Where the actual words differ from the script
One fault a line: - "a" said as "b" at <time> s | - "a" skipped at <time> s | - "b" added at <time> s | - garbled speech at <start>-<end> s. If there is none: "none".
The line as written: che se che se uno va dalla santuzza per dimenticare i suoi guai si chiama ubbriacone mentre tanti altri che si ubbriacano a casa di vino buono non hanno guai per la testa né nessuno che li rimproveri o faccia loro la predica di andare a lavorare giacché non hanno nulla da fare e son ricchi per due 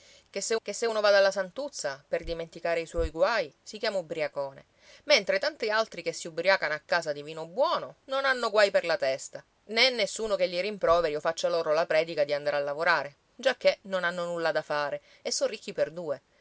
none